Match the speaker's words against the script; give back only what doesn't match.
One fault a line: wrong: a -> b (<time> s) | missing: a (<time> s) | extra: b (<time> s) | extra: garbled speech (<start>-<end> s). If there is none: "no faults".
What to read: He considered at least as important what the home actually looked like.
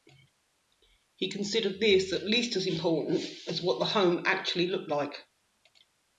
extra: this (1.8 s)
extra: as (3.5 s)